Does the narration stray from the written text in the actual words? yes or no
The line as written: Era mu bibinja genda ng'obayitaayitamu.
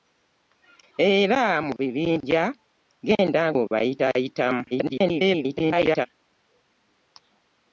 yes